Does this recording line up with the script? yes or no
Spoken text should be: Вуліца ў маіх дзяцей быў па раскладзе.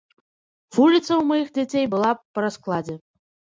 no